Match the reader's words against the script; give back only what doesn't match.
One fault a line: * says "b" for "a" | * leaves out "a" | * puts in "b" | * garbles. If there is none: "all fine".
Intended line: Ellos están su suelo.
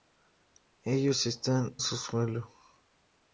all fine